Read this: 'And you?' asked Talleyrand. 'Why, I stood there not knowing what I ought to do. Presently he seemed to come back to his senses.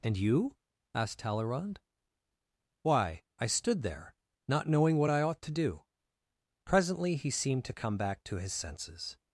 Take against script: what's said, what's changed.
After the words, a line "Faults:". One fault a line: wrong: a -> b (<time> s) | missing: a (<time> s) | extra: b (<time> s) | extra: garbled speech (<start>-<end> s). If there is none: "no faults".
'And you?' asked Talleyrand. 'Why, I stood there not knowing what I ought to do. Presently he seemed to come back to his senses.
Faults:
no faults